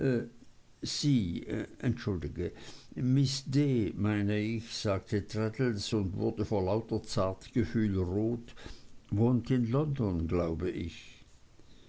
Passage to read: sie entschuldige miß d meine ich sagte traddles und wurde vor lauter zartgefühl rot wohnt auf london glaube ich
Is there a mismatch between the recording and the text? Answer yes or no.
yes